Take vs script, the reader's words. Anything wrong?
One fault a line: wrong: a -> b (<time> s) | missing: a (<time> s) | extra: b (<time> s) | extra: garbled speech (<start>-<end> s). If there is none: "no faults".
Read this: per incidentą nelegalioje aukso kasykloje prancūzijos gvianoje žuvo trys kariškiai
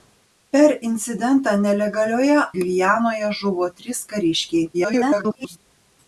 missing: aukso kasykloje prancūzijos (2.4 s)
extra: garbled speech (4.7-5.6 s)